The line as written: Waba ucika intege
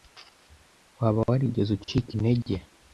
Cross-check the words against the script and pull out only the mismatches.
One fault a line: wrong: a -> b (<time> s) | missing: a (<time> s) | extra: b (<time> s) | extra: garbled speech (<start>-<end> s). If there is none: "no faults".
extra: warigeze (1.3 s)